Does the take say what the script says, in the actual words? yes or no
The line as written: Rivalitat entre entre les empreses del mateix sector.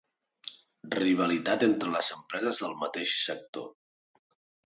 no